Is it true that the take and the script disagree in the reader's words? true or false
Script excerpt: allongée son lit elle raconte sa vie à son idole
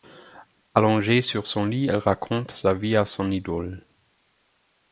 true